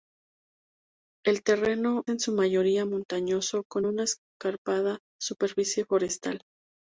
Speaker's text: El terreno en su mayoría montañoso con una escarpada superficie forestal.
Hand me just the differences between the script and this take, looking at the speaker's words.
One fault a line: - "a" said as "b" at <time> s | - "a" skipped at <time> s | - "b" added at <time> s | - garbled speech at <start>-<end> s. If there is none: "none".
none